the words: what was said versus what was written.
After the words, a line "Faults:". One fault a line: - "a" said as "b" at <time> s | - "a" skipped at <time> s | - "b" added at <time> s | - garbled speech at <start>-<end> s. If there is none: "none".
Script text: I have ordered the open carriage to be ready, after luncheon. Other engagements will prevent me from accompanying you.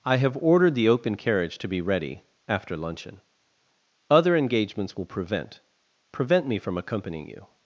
I have ordered the open carriage to be ready, after luncheon. Other engagements will prevent prevent me from accompanying you.
Faults:
- "prevent" added at 6.1 s